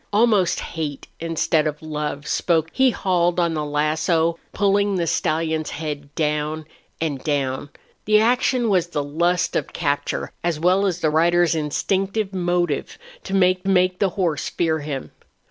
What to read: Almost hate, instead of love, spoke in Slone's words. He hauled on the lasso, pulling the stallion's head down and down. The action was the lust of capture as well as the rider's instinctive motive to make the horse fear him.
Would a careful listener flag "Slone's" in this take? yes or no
yes